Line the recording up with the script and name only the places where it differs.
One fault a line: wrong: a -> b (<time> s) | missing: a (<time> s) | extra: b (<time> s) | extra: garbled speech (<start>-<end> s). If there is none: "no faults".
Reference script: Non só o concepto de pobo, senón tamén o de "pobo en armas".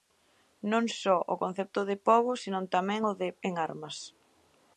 missing: pobo (3.3 s)